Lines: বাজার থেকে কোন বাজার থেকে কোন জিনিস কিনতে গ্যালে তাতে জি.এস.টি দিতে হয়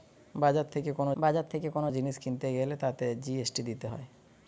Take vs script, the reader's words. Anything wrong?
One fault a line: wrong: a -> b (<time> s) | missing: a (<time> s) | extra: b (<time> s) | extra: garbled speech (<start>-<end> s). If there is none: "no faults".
no faults